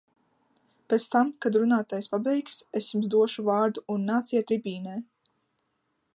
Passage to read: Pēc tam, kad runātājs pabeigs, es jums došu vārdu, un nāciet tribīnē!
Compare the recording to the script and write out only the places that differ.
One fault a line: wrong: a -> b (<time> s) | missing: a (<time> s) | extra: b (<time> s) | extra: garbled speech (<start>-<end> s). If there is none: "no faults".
no faults